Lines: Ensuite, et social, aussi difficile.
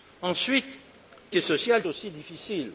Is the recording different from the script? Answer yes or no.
no